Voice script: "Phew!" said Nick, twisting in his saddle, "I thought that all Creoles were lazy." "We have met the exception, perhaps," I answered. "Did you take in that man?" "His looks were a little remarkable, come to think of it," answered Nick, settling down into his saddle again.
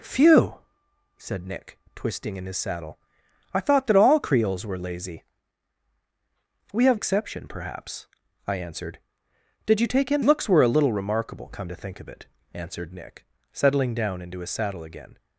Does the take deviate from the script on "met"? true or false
true